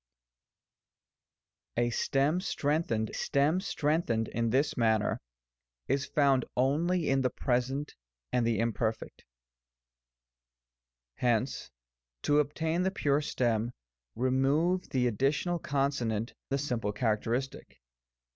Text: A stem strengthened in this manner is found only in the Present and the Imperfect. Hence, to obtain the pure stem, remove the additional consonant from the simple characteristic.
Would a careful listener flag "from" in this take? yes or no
yes